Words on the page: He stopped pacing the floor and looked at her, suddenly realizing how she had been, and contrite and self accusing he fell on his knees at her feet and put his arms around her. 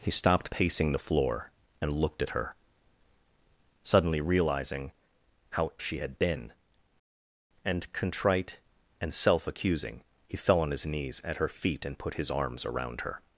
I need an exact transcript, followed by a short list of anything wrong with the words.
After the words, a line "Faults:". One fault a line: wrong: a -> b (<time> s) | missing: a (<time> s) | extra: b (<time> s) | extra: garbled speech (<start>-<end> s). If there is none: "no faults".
He stopped pacing the floor and looked at her, suddenly realizing how she had been, and contrite and self accusing he fell on his knees at her feet and put his arms around her.
Faults:
no faults